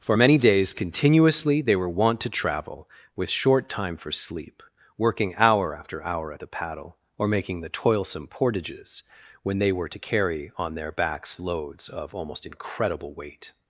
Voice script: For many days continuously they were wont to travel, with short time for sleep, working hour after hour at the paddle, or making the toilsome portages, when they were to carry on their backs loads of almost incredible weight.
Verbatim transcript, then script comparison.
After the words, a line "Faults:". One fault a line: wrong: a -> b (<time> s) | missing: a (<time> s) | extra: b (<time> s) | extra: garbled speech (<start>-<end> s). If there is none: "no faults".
For many days continuously they were wont to travel, with short time for sleep, working hour after hour at the paddle, or making the toilsome portages, when they were to carry on their backs loads of almost incredible weight.
Faults:
no faults